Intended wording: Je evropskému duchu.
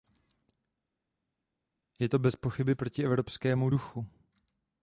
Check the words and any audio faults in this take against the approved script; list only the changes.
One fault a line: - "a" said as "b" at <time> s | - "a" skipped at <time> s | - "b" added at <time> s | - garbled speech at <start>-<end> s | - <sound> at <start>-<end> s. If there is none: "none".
- "to bezpochyby proti" added at 2.1 s